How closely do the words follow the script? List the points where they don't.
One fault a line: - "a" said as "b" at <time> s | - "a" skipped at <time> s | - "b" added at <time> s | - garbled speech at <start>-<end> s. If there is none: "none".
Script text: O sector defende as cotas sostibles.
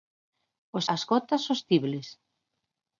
- "sector defende" skipped at 0.8 s